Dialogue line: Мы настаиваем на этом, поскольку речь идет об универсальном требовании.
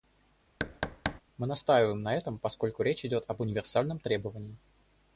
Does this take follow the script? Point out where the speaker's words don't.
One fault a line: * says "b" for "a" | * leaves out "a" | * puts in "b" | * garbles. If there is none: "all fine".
all fine